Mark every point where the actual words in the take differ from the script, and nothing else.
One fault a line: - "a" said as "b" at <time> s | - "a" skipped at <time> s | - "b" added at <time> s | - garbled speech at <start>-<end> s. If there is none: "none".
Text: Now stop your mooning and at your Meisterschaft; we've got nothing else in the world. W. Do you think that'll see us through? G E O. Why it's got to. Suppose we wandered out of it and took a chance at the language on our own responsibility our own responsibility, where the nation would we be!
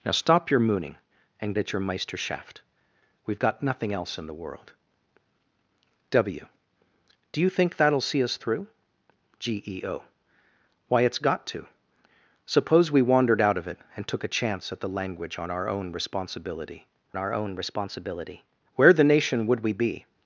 none